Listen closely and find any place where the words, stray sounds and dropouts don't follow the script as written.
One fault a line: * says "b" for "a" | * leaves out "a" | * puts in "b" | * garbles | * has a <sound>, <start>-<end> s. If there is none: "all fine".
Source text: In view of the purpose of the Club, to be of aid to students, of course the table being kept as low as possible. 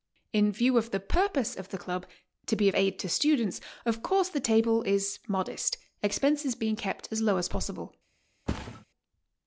* puts in "is modest expenses"
* has a thud, 8.5-8.9 s